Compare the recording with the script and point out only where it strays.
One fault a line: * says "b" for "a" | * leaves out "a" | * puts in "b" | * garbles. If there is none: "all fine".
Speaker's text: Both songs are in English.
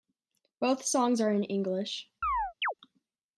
all fine